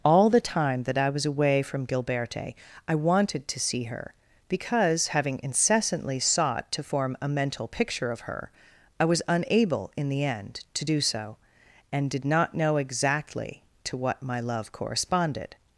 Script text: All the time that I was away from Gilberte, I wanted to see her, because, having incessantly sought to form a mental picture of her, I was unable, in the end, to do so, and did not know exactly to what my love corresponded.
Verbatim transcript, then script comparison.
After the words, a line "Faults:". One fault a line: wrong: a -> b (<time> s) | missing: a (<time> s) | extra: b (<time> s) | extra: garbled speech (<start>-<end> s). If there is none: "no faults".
All the time that I was away from Gilberte, I wanted to see her, because, having incessantly sought to form a mental picture of her, I was unable, in the end, to do so, and did not know exactly to what my love corresponded.
Faults:
no faults